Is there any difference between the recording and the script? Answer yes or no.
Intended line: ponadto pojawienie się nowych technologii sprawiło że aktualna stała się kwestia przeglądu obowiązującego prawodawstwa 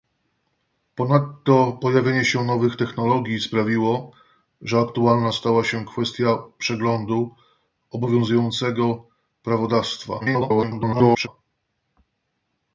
yes